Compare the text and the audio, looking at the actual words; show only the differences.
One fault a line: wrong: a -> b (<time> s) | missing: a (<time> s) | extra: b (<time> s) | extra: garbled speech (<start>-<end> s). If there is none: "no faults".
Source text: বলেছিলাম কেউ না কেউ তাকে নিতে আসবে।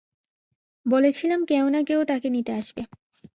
no faults